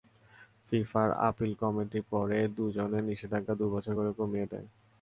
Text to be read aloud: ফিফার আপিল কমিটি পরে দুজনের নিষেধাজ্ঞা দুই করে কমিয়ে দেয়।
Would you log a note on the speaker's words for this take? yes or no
yes